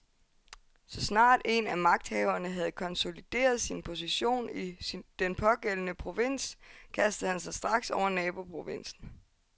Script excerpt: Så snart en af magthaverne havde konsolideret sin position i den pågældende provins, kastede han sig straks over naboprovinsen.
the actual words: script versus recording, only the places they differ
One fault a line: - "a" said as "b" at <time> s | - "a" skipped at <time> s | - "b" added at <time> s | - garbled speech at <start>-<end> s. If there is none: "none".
none